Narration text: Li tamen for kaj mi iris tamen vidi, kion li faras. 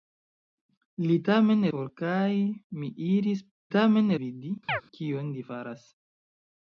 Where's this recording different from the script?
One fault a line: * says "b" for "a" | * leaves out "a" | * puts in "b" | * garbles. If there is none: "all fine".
all fine